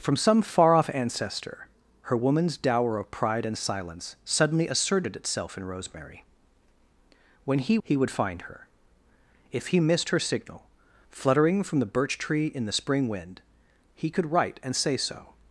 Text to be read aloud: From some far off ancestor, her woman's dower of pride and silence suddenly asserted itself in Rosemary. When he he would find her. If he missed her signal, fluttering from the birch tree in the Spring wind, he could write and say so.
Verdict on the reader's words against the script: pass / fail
pass